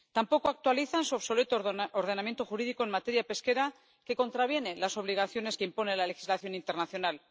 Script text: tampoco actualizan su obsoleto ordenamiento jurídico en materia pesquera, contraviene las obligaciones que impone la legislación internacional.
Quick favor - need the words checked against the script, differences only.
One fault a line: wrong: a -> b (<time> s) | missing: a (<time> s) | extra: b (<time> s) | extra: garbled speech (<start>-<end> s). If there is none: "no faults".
extra: que (4.0 s)